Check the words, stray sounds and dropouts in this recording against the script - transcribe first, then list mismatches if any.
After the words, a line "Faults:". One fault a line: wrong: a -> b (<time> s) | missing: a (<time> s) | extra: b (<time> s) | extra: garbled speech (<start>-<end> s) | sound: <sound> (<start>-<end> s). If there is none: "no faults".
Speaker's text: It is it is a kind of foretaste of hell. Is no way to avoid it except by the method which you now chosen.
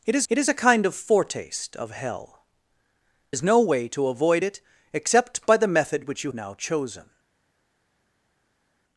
It is it is a kind of foretaste of hell. Is no way to avoid it except by the method which you now chosen.
Faults:
no faults